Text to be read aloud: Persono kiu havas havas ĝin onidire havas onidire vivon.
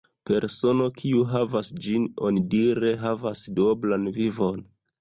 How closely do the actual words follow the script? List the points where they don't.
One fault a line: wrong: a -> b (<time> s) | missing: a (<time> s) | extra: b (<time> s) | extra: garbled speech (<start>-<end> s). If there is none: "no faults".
missing: havas (1.7 s)
wrong: onidire -> duoblan (3.6 s)